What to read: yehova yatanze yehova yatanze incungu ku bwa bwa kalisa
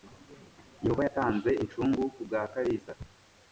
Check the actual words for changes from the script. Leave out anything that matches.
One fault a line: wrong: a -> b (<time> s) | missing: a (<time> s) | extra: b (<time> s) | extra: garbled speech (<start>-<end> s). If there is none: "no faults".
missing: yehova yatanze (1.5 s)
missing: bwa (2.4 s)